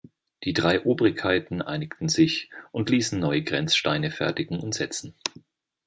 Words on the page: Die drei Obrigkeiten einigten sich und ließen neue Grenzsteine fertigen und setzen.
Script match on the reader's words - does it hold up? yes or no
yes